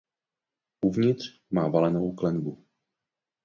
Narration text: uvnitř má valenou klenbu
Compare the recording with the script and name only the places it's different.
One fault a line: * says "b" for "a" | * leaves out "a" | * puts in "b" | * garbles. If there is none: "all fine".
all fine